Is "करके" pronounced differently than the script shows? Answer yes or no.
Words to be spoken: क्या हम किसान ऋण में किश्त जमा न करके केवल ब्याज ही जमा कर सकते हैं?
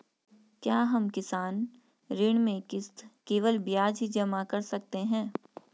yes